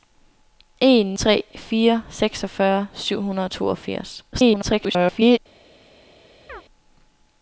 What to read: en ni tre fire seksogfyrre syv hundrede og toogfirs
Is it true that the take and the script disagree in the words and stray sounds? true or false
true